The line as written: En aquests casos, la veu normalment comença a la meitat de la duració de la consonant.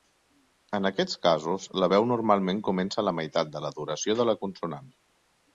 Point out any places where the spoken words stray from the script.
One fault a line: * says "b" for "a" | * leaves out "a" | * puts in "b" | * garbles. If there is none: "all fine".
all fine